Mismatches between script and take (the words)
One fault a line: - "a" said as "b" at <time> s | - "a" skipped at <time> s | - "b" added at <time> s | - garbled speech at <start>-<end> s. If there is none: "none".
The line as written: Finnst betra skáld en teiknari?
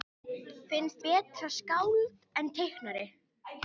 none